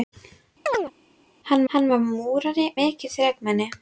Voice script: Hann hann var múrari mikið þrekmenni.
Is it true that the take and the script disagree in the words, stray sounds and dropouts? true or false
true